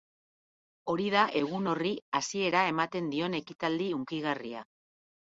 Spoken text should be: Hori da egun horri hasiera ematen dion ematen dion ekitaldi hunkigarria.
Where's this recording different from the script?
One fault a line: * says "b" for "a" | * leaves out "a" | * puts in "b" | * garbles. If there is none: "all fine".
* leaves out "ematen dion"